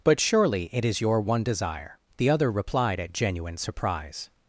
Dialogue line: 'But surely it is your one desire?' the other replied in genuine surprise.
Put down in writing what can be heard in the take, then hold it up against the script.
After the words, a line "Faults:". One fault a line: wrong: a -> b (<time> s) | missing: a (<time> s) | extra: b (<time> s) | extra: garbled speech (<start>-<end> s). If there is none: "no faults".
'But surely it is your one desire?' the other replied at genuine surprise.
Faults:
wrong: in -> at (3.0 s)